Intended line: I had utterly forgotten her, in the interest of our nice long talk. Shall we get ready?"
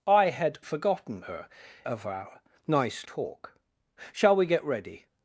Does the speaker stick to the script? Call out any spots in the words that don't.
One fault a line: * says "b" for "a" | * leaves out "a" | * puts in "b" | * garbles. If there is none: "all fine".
* leaves out "utterly"
* leaves out "in the interest"
* leaves out "long"